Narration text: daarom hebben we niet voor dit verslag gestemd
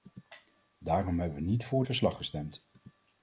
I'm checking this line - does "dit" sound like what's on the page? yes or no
no